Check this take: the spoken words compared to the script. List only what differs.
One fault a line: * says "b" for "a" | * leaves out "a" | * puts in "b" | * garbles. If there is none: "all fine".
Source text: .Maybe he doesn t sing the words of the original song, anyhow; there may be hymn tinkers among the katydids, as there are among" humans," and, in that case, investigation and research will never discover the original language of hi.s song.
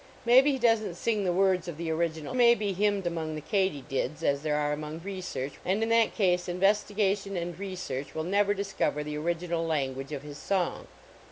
* leaves out "song anyhow there"
* leaves out "tinkers"
* says "research" for "humans"